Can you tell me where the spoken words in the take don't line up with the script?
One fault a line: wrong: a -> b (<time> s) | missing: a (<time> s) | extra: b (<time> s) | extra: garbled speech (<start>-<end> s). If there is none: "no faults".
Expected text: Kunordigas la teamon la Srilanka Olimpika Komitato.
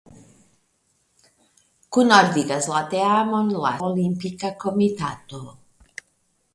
missing: Srilanka (3.7 s)